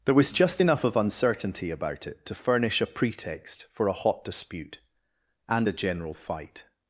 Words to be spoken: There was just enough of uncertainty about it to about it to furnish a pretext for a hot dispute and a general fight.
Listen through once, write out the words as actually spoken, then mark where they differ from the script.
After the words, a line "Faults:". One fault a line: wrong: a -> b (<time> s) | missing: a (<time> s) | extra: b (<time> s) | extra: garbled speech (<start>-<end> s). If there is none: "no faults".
There was just enough of uncertainty about it to furnish a pretext for a hot dispute and a general fight.
Faults:
missing: about it to (2.4 s)